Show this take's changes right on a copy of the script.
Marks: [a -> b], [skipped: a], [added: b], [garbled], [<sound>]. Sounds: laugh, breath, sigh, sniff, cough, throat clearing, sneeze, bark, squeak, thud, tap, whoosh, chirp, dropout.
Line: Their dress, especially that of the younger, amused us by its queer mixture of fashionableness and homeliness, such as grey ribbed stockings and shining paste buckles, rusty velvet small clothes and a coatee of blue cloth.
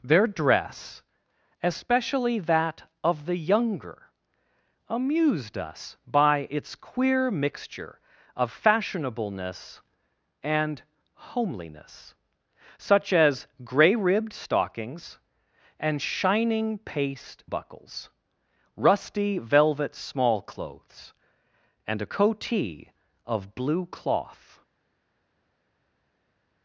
Their dress, especially that of the younger, amused us by its queer mixture of fashionableness and homeliness, such as grey ribbed stockings and shining paste buckles, rusty velvet small clothes and a coatee of blue cloth.